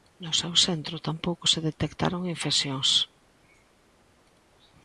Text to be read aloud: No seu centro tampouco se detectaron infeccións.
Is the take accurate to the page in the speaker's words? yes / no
yes